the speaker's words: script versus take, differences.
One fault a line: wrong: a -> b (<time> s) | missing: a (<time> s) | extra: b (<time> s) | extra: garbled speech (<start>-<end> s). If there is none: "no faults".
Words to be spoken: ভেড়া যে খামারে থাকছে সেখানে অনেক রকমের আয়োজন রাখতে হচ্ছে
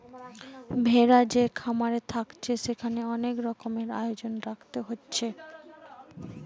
no faults